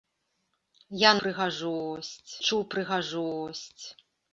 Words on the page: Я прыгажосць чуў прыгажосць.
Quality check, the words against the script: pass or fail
pass